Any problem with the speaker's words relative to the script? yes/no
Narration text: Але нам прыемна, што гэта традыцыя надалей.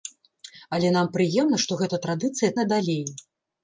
no